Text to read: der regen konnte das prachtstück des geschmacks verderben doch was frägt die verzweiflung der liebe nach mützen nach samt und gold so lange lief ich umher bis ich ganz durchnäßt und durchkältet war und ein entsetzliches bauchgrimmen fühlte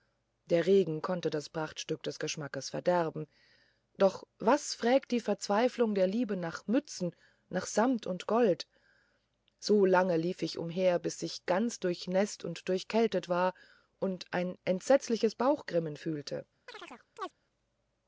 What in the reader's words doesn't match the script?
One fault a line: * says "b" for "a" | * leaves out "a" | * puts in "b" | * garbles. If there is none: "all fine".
all fine